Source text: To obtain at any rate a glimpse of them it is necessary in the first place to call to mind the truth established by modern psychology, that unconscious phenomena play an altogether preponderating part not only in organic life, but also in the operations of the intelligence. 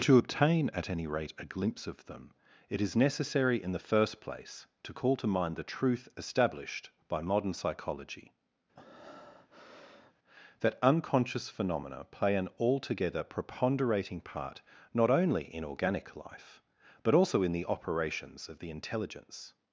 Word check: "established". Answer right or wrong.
right